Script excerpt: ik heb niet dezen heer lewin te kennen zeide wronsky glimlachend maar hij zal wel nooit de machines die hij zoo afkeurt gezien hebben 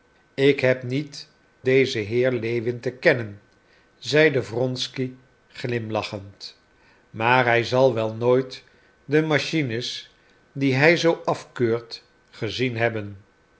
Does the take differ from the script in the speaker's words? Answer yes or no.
no